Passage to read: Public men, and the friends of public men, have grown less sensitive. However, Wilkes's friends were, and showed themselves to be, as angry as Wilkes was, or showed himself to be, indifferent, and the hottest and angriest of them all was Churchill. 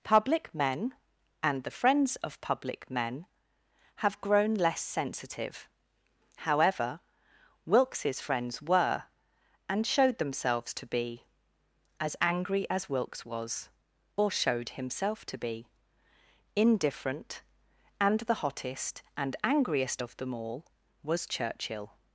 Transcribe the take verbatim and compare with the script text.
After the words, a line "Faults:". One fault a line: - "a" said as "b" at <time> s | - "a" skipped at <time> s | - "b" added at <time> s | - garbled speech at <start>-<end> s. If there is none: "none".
Public men, and the friends of public men, have grown less sensitive. However, Wilkes's friends were, and showed themselves to be, as angry as Wilkes was, or showed himself to be, indifferent, and the hottest and angriest of them all was Churchill.
Faults:
none